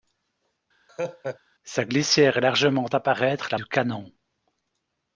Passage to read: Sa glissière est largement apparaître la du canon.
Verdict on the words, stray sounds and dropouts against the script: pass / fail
fail